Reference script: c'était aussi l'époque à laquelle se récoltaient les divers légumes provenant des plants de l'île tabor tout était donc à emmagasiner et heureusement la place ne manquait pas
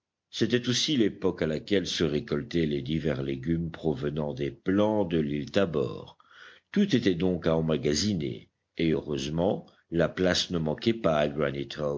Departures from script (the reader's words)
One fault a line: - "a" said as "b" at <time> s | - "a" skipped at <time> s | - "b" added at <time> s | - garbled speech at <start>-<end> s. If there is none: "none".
none